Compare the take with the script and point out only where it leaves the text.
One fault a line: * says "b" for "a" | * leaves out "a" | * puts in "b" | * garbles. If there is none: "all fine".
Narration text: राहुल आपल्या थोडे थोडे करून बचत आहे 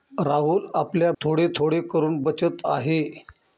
all fine